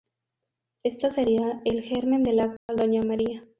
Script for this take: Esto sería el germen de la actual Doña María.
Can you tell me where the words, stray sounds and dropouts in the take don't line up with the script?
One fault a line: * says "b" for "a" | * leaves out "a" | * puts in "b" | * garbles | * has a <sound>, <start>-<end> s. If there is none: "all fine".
* has a dropout, 2.6-2.7 s